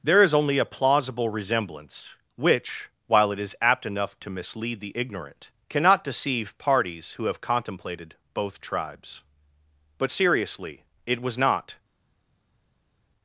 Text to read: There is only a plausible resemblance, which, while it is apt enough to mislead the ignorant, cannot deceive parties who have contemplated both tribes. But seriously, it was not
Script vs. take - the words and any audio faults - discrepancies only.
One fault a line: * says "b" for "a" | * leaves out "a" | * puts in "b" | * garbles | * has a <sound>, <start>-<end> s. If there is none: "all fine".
all fine